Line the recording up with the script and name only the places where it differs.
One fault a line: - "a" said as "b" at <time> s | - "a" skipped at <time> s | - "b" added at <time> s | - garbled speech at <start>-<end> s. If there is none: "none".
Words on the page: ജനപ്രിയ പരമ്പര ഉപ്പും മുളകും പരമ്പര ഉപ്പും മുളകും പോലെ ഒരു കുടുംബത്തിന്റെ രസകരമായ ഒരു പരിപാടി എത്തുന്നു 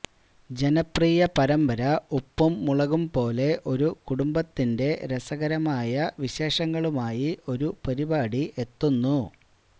- "പരമ്പര ഉപ്പും മുളകും" skipped at 3.0 s
- "വിശേഷങ്ങളുമായി" added at 6.2 s